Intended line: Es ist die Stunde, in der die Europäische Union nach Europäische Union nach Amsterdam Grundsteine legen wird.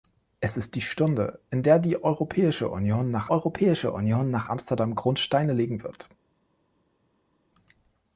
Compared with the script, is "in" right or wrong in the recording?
right